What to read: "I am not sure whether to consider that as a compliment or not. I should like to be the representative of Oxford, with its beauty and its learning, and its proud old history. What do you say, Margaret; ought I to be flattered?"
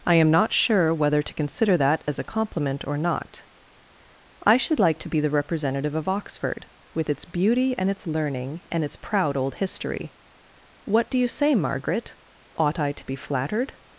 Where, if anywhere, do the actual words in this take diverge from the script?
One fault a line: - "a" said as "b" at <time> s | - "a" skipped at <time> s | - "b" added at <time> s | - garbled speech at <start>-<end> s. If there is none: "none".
none